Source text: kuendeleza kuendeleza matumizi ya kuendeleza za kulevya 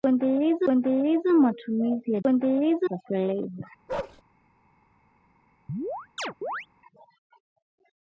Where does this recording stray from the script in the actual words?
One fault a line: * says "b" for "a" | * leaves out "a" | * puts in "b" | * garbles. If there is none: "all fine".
all fine